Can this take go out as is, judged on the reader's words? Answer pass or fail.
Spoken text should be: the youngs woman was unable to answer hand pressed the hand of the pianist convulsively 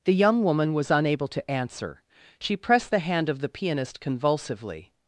fail